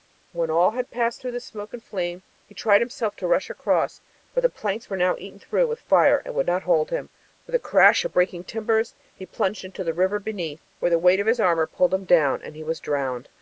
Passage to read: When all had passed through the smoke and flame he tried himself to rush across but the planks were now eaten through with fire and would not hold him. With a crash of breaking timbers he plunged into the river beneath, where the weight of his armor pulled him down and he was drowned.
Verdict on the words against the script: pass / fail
pass